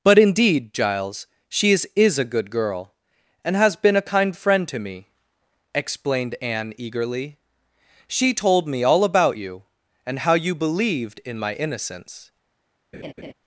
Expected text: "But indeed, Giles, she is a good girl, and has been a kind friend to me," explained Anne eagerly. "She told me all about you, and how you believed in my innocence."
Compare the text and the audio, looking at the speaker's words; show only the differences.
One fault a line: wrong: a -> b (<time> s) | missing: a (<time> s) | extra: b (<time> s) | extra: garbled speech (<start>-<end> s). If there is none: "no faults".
extra: is (1.9 s)